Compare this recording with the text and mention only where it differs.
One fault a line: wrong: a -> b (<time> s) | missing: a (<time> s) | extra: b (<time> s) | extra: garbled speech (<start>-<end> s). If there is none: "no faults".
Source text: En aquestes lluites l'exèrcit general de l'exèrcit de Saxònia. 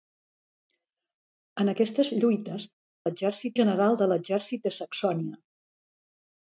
no faults